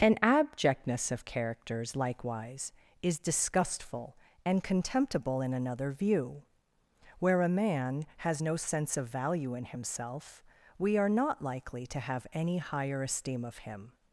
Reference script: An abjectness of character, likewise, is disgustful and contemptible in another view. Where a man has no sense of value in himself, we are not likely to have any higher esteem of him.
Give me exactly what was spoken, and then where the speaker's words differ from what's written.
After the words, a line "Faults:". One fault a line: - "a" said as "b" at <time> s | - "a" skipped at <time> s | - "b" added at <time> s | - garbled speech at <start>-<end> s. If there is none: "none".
An abjectness of characters, likewise, is disgustful and contemptible in another view. Where a man has no sense of value in himself, we are not likely to have any higher esteem of him.
Faults:
- "character" said as "characters" at 1.2 s